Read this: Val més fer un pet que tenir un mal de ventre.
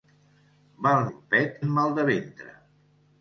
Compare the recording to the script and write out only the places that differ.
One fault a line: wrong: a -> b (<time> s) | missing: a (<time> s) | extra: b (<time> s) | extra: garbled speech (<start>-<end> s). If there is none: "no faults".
missing: més fer (1.0 s)
missing: que tenir (1.6 s)